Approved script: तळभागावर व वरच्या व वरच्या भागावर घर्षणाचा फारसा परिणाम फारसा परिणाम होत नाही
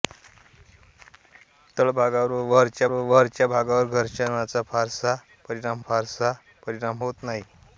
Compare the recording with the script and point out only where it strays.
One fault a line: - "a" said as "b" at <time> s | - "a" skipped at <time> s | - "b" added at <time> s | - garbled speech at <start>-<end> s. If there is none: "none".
none